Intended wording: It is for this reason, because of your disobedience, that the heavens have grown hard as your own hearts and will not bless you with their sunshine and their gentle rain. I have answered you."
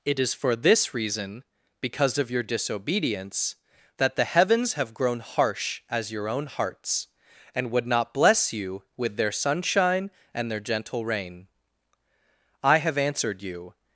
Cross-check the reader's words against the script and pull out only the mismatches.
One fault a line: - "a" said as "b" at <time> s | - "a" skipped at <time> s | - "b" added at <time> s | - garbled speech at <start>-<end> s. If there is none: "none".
- "hard" said as "harsh" at 5.2 s
- "will" said as "would" at 7.7 s